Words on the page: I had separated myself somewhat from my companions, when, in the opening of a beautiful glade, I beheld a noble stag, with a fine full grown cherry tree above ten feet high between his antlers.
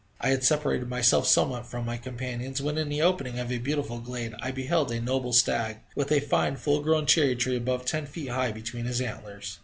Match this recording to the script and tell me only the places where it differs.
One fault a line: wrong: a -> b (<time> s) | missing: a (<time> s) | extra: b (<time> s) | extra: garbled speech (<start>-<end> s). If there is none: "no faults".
no faults